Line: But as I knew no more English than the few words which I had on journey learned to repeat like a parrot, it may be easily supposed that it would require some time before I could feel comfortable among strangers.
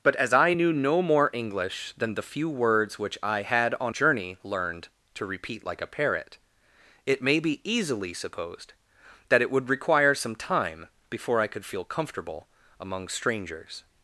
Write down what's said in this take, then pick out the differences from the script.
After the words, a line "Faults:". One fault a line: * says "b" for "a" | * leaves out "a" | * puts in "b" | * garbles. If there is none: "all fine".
But as I knew no more English than the few words which I had on journey learned to repeat like a parrot, it may be easily supposed that it would require some time before I could feel comfortable among strangers.
Faults:
all fine